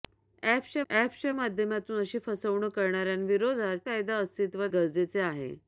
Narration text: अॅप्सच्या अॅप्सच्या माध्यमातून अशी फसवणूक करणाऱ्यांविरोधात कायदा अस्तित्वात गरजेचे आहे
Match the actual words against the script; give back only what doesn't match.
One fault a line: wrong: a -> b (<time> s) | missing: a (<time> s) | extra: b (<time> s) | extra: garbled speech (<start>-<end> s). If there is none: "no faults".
no faults